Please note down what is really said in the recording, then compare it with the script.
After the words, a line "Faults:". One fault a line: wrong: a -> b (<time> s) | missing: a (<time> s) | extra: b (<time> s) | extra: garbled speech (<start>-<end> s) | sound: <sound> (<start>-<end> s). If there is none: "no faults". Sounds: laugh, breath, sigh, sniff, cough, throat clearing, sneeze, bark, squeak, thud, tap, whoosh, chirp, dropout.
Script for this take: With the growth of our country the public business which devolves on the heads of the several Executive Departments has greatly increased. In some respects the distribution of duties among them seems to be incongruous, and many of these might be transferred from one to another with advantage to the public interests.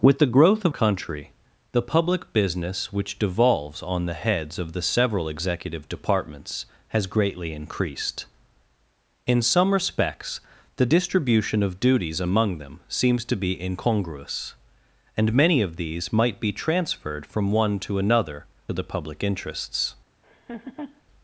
With the growth of country the public business which devolves on the heads of the several Executive Departments has greatly increased. In some respects the distribution of duties among them seems to be incongruous, and many of these might be transferred from one to another the public interests.
Faults:
missing: our (0.7 s)
missing: with advantage to (18.5 s)
sound: laugh (20.2-21.0 s)